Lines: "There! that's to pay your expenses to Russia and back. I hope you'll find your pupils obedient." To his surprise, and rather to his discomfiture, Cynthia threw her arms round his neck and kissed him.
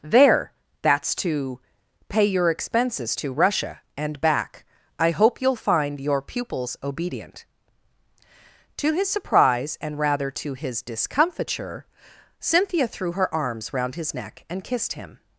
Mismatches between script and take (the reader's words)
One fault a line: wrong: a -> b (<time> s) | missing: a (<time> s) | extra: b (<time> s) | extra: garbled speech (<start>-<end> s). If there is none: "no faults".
no faults